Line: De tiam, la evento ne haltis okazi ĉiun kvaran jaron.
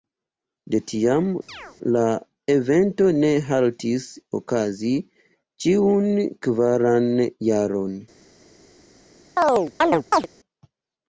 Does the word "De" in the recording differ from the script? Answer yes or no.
no